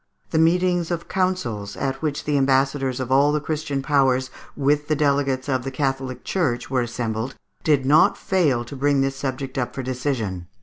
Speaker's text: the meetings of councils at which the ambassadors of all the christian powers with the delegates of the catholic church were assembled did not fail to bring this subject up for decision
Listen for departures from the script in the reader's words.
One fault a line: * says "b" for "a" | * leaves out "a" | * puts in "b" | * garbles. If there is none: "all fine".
all fine